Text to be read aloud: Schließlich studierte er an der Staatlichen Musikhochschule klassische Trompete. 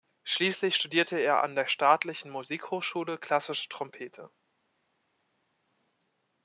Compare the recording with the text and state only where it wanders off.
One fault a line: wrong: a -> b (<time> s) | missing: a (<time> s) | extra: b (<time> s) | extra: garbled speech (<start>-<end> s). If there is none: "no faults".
no faults